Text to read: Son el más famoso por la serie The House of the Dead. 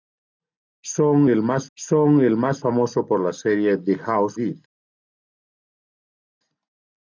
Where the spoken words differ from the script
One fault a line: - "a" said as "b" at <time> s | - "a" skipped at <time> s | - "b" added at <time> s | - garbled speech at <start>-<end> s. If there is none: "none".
- "son el más" added at 1.8 s
- "of the" skipped at 4.4 s